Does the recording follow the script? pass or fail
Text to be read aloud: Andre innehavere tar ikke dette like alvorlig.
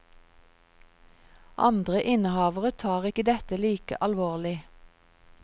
pass